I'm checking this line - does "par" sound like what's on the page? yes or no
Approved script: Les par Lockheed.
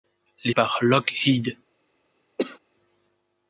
yes